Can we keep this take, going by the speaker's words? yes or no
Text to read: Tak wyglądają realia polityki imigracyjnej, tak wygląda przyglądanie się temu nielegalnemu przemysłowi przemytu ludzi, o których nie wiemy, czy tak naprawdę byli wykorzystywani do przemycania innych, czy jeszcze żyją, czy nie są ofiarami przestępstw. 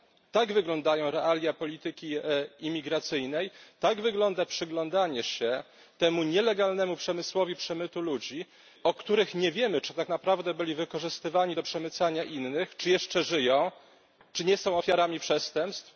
yes